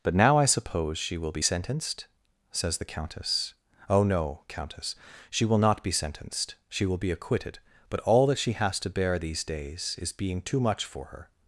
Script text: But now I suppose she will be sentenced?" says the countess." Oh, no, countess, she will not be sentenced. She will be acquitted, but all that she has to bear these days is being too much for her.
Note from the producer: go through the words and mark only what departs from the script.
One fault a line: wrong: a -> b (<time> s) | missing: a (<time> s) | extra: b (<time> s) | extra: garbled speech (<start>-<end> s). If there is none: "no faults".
no faults